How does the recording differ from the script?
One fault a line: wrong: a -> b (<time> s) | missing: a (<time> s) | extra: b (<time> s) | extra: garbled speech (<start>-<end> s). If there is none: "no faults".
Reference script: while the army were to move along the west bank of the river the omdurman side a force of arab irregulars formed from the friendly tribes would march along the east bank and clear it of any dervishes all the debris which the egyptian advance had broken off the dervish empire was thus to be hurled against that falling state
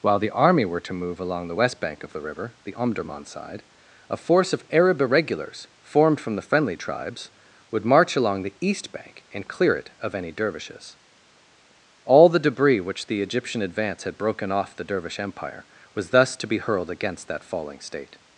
no faults